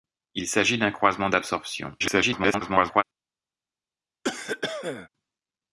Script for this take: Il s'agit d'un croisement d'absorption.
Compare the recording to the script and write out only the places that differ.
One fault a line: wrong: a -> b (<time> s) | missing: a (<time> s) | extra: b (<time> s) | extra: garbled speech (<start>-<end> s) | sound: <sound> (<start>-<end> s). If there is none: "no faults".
extra: garbled speech (2.0-3.0 s)
sound: cough (4.2-5.1 s)